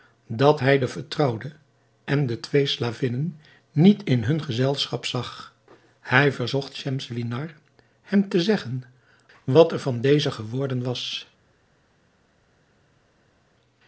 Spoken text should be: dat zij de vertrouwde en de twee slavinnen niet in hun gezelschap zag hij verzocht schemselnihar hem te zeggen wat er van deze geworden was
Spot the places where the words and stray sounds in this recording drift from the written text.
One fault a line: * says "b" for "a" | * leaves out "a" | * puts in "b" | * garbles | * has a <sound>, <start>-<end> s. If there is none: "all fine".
* says "hij" for "zij"